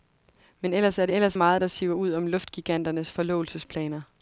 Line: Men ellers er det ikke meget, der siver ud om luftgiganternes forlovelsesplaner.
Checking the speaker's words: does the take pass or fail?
fail